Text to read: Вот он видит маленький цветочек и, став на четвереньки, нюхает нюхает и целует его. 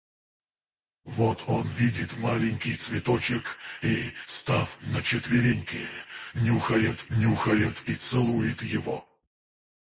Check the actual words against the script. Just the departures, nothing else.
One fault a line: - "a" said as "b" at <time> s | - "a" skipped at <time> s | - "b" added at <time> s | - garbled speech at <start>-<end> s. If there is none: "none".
none